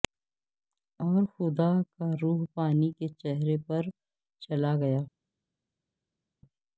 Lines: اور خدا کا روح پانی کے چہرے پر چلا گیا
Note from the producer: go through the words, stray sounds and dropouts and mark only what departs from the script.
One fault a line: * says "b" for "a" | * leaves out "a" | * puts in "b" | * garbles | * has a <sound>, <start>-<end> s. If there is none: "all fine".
all fine